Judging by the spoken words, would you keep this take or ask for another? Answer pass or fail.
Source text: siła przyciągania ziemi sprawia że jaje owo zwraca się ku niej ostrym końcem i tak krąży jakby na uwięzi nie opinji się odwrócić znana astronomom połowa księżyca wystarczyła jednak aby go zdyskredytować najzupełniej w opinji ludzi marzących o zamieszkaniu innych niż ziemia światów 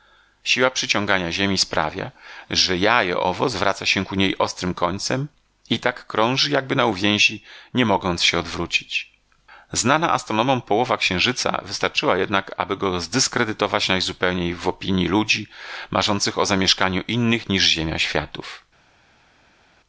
fail